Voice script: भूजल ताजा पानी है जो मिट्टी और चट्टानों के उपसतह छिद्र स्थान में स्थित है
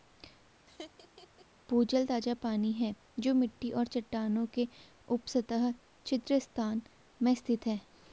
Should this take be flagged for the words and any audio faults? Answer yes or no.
yes